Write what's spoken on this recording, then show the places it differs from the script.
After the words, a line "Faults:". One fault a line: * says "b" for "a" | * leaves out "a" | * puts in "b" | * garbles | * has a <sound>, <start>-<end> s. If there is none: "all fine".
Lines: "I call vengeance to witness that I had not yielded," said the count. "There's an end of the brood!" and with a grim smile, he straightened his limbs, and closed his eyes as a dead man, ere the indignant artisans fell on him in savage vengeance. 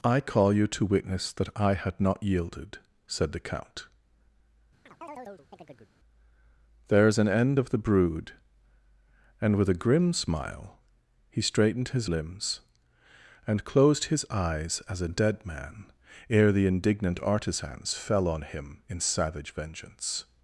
"I call you to witness that I had not yielded," said the count. "There's an end of the brood!" and with a grim smile, he straightened his limbs, and closed his eyes as a dead man, ere the indignant artisans fell on him in savage vengeance.
Faults:
* says "you" for "vengeance"
* has a chirp, 4.9-5.9 s